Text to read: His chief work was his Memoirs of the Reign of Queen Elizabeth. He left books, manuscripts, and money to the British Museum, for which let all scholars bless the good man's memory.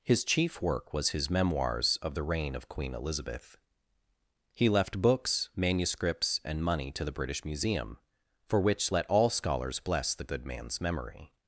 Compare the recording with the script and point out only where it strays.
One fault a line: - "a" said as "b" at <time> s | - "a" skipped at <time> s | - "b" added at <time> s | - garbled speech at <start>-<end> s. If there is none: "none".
none